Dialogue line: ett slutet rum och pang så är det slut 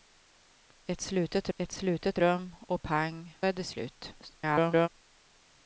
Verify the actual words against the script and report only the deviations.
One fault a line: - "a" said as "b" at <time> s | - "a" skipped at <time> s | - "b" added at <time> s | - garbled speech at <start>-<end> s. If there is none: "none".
- "ett slutet" added at 1.6 s
- "så" skipped at 3.4 s
- garbled speech at 4.2-4.9 s